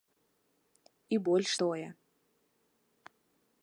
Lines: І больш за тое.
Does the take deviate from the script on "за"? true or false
true